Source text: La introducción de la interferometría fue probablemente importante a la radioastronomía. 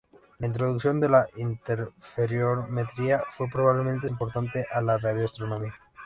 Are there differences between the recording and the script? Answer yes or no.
no